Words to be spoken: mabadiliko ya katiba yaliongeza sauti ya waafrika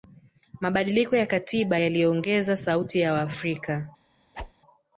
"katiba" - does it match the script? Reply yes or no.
yes